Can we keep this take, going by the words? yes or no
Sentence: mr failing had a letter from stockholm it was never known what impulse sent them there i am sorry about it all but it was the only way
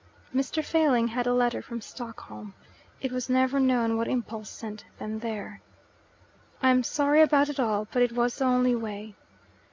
yes